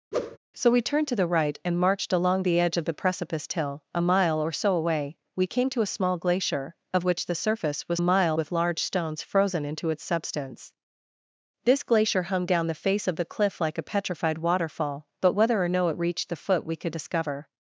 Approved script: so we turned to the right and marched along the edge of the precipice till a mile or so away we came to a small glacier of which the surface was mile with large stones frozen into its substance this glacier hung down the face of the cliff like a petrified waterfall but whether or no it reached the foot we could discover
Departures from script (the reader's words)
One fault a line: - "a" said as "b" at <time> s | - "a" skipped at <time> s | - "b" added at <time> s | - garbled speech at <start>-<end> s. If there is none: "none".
none